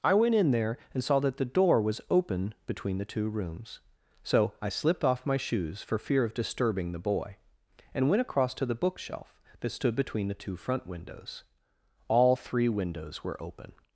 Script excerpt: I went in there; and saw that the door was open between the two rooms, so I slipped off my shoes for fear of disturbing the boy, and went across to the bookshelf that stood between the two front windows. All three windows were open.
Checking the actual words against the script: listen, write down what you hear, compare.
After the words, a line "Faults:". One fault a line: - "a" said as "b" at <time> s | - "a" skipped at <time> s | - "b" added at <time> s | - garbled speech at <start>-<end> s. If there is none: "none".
I went in there; and saw that the door was open between the two rooms, so I slipped off my shoes for fear of disturbing the boy, and went across to the bookshelf that stood between the two front windows. All three windows were open.
Faults:
none